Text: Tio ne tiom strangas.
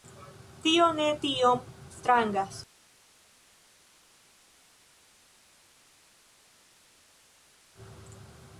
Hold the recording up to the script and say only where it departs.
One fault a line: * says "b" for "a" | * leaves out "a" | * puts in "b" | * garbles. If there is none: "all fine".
all fine